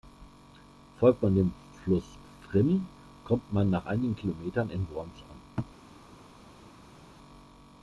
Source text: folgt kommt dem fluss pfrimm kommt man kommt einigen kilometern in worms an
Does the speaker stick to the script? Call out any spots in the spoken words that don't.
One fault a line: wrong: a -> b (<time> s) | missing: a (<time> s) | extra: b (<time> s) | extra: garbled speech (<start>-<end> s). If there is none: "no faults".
wrong: kommt -> man (1.2 s)
wrong: kommt -> nach (3.7 s)